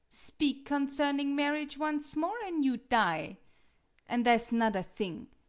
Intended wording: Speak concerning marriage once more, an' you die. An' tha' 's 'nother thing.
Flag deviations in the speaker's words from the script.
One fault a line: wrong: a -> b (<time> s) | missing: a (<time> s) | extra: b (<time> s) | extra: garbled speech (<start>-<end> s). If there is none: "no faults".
no faults